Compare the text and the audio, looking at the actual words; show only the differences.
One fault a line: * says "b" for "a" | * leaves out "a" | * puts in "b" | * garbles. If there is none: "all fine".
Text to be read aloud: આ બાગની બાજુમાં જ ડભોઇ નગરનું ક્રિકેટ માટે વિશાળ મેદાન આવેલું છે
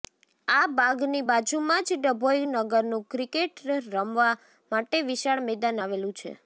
* puts in "રમવા"